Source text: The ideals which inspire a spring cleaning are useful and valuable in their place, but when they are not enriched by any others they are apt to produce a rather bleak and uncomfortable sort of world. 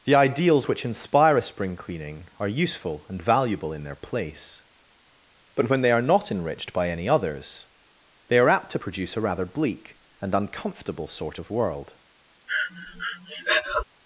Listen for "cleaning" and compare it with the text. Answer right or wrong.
right